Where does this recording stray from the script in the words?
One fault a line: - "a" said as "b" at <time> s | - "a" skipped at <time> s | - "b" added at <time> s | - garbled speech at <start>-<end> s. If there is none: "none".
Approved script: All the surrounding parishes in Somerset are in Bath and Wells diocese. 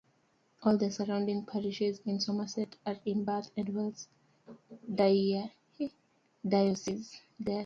none